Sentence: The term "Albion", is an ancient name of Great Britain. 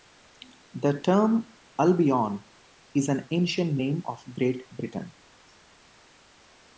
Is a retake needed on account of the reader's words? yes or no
no